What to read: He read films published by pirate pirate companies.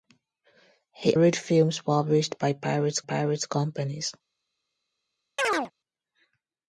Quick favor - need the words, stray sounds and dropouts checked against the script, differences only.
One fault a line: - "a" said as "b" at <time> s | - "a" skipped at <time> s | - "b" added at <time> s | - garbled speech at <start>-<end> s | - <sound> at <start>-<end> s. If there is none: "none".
- chirp at 5.4-5.7 s